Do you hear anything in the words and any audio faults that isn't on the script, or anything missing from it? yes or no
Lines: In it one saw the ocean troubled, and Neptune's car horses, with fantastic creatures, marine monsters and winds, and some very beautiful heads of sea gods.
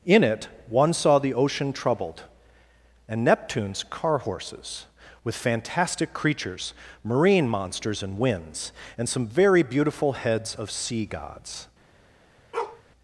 yes